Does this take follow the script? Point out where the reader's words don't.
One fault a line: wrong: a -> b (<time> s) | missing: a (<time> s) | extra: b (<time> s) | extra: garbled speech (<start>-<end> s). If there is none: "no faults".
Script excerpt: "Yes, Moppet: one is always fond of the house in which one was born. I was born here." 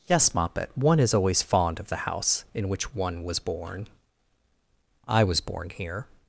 no faults